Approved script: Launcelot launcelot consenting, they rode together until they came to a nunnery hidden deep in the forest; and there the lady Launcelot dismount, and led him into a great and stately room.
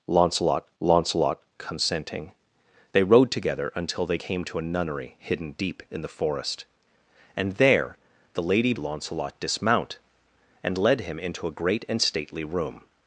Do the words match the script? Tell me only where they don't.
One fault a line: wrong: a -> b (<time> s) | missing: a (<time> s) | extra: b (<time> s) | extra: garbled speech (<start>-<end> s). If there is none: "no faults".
no faults